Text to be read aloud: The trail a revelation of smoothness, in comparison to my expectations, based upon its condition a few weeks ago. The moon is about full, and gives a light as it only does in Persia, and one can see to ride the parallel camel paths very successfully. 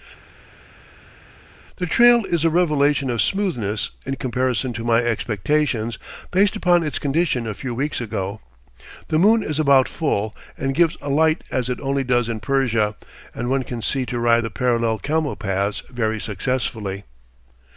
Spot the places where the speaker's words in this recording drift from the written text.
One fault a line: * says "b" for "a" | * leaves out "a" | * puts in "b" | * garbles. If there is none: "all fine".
* puts in "is"